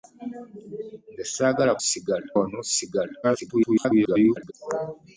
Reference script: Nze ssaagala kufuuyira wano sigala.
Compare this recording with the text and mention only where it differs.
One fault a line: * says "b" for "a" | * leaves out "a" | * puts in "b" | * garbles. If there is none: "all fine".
* says "sigala" for "kufuuyira"
* garbles